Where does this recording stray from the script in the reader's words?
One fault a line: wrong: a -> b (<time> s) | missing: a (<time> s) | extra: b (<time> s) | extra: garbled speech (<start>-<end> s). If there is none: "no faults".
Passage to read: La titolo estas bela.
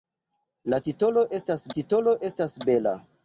extra: titolo estas (1.8 s)